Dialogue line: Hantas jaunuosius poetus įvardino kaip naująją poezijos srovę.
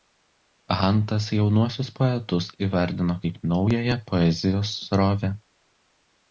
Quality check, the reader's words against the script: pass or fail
pass